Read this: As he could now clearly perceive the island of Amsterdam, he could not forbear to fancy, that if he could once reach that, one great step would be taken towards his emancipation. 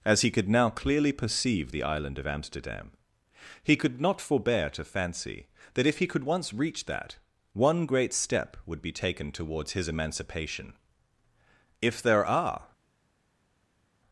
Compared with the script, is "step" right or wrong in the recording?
right